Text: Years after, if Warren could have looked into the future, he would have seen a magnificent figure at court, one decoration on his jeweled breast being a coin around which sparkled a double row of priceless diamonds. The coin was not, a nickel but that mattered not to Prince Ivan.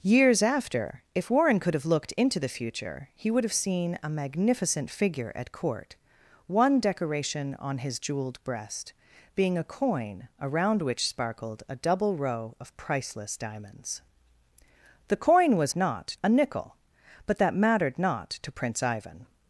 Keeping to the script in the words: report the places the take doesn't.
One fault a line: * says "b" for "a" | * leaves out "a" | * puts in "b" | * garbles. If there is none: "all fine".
all fine